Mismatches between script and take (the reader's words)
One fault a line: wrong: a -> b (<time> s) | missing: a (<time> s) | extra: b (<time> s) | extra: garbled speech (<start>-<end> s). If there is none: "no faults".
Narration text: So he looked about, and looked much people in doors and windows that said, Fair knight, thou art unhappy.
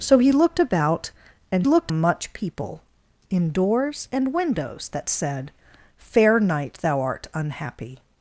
no faults